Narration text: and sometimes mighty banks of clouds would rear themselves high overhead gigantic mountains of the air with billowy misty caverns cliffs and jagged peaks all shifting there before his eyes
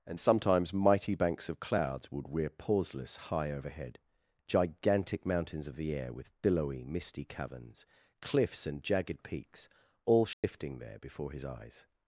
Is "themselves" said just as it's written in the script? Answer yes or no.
no